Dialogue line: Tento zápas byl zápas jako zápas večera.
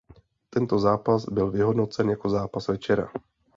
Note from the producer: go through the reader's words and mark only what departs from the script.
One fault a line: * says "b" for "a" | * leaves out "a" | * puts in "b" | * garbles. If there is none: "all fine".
* says "vyhodnocen" for "zápas"